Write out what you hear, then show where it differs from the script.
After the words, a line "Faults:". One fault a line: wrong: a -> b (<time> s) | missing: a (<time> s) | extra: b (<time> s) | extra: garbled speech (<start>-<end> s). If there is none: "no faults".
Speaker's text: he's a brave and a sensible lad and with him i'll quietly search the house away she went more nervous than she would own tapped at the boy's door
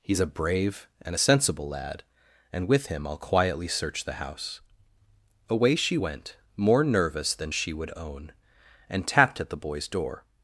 he's a brave and a sensible lad and with him i'll quietly search the house away she went more nervous than she would own and tapped at the boy's door
Faults:
extra: and (8.9 s)